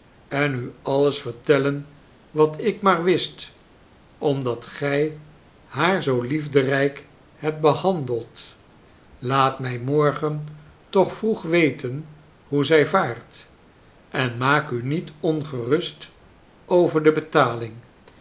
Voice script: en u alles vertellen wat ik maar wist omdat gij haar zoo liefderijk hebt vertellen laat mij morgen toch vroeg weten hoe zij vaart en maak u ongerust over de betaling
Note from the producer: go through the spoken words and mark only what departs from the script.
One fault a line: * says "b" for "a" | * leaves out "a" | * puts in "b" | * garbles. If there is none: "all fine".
* says "behandeld" for "vertellen"
* puts in "niet"